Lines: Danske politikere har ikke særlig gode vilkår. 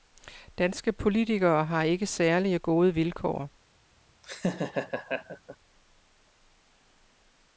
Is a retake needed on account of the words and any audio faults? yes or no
yes